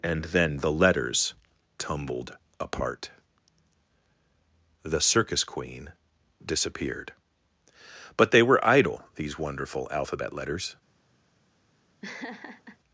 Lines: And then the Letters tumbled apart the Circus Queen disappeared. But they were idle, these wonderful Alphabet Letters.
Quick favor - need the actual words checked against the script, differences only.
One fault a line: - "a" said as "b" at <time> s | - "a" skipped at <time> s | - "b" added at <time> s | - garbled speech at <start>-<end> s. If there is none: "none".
none